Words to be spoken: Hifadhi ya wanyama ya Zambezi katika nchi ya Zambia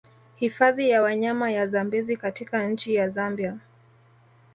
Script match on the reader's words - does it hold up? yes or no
yes